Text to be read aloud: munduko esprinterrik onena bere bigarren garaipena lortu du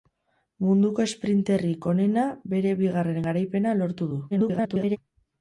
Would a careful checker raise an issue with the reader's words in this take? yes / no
yes